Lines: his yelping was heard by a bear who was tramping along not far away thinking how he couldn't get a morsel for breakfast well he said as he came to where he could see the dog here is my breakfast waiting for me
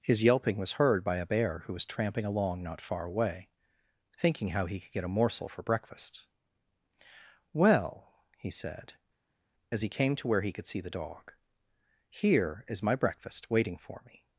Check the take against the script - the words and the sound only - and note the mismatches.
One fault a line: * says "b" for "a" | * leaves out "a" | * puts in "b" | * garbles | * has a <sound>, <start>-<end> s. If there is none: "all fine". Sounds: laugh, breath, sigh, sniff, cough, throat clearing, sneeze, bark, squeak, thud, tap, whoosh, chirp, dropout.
* says "could" for "couldn't"